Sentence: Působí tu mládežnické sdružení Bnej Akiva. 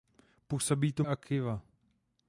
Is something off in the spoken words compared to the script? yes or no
yes